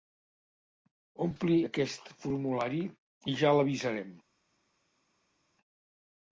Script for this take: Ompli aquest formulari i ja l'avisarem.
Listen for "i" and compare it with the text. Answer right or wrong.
right